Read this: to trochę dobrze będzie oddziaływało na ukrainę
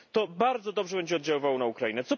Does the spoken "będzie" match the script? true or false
true